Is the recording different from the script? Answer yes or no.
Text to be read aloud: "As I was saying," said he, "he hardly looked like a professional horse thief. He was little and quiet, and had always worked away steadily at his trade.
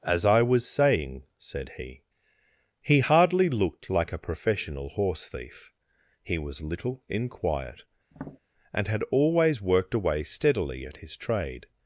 yes